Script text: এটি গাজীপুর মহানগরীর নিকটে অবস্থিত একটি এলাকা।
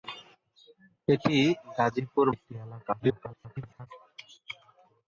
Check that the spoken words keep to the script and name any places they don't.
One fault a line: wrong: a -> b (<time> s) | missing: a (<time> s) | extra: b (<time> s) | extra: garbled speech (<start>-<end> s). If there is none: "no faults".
missing: মহানগরীর নিকটে অবস্থিত (2.2 s)
extra: garbled speech (3.0-3.9 s)